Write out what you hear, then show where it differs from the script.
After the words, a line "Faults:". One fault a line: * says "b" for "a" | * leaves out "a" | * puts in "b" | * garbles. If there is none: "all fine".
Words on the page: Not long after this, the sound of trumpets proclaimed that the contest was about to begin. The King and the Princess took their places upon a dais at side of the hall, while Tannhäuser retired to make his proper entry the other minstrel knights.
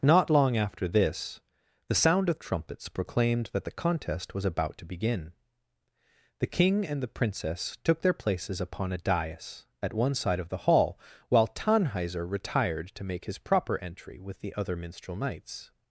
Not long after this, the sound of trumpets proclaimed that the contest was about to begin. The King and the Princess took their places upon a dais at one side of the hall, while Tannhäuser retired to make his proper entry with the other minstrel knights.
Faults:
* puts in "one"
* puts in "with"